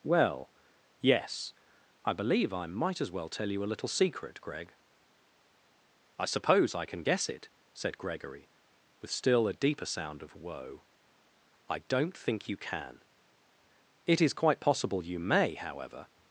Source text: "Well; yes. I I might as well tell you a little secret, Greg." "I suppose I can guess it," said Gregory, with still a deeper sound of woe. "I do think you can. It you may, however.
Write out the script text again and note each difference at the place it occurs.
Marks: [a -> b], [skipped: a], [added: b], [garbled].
"Well; yes. I [added: believe] I might as well tell you a little secret, Greg." "I suppose I can guess it," said Gregory, with still a deeper sound of woe. "I [do -> don't] think you can. It [added: is quite possible] you may, however.